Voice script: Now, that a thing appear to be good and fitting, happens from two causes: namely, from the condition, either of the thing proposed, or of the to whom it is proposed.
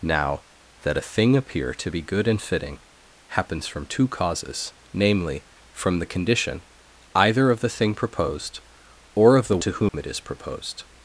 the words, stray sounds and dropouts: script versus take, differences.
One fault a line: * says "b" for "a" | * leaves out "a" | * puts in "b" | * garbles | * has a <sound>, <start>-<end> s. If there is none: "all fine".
* has a dropout, 9.9-9.9 s